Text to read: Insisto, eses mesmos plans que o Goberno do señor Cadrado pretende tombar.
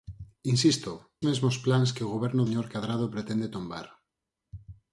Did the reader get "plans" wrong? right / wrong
right